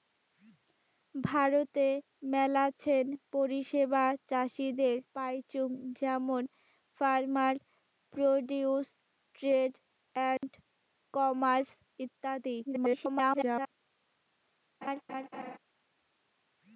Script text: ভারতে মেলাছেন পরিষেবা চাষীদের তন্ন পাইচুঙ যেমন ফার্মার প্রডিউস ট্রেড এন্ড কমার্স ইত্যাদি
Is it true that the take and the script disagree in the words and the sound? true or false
true